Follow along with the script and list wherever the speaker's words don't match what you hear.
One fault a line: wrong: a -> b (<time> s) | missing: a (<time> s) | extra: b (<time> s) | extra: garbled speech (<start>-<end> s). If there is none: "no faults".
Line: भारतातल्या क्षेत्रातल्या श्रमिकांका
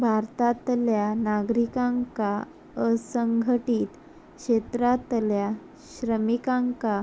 extra: नागरिकांका असंघटीत (1.1 s)